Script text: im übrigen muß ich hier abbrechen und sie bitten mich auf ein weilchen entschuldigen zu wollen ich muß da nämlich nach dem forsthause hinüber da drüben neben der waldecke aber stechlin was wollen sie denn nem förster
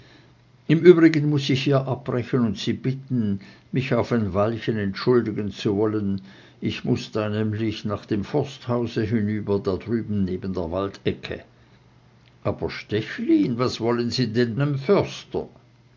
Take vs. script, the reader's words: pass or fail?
pass